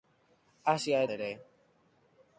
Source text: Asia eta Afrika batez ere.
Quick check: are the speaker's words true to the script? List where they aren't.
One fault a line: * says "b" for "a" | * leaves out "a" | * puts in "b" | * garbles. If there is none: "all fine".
* leaves out "eta Afrika batez"